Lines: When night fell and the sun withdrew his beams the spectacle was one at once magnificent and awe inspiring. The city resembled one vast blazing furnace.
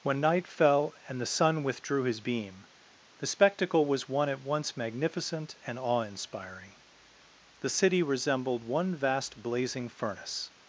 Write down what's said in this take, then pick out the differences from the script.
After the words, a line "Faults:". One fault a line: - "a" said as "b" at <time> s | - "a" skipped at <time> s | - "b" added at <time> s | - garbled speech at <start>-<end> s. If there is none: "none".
When night fell and the sun withdrew his beam the spectacle was one at once magnificent and awe inspiring. The city resembled one vast blazing furnace.
Faults:
- "beams" said as "beam" at 2.2 s